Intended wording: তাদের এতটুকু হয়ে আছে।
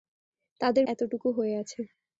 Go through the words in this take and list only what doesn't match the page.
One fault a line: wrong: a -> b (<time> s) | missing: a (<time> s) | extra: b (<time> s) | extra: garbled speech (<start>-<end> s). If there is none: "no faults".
no faults